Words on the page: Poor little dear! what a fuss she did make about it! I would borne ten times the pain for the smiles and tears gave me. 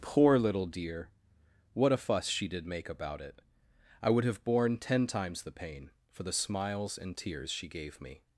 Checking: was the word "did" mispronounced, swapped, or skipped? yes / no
no